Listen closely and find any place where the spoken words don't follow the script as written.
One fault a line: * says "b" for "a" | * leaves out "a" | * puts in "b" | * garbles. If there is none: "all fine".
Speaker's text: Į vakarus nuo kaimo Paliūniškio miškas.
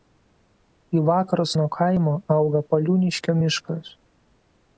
* puts in "auga"